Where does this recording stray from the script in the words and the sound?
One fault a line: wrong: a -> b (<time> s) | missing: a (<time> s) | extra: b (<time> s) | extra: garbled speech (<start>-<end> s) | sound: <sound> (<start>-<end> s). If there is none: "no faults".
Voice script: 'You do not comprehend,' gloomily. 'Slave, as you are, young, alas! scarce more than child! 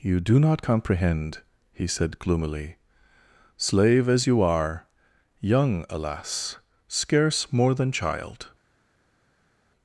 extra: he said (1.7 s)